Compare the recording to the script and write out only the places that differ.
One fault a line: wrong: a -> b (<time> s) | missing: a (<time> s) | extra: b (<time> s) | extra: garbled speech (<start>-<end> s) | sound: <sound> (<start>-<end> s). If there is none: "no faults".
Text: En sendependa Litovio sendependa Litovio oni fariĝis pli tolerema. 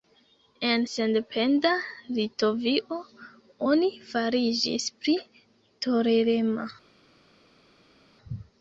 missing: sendependa Litovio (3.0 s)